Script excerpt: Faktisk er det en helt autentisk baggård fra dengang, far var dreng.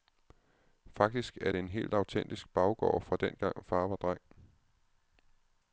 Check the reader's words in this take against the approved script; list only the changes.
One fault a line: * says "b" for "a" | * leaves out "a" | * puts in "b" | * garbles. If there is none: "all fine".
all fine